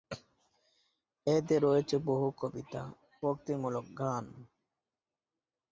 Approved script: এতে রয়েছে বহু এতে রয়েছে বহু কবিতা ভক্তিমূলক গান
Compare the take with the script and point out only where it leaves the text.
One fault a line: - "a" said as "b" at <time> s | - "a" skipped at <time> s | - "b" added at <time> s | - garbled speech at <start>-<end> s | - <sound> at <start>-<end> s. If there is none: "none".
- "এতে রয়েছে বহু" skipped at 2.3 s